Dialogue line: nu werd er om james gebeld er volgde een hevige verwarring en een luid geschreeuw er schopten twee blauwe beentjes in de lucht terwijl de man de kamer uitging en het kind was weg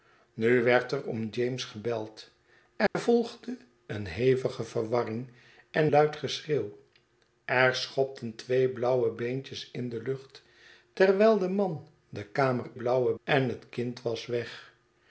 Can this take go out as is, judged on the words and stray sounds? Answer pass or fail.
fail